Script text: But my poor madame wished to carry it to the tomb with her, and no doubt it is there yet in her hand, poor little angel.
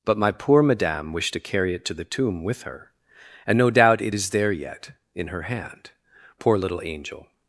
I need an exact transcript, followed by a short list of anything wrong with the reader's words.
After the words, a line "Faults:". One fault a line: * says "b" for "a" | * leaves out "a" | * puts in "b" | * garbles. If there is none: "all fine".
But my poor madame wished to carry it to the tomb with her, and no doubt it is there yet in her hand, poor little angel.
Faults:
all fine